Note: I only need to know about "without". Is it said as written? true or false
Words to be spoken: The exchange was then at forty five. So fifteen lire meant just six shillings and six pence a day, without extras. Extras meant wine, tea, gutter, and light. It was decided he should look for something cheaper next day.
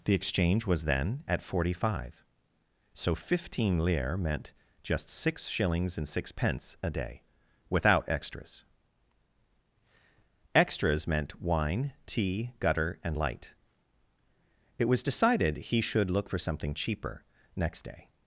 true